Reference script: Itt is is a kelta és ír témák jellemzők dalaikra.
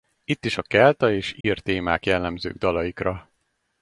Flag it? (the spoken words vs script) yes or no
yes